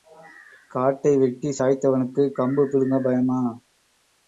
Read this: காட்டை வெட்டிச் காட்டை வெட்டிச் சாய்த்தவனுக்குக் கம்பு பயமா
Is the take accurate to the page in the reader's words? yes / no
no